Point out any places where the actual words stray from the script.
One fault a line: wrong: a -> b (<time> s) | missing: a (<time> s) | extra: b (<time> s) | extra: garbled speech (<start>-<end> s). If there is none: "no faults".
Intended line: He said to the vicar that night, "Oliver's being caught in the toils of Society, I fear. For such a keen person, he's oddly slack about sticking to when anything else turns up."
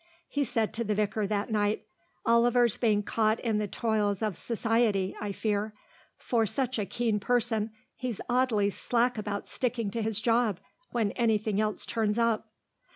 extra: his job (10.0 s)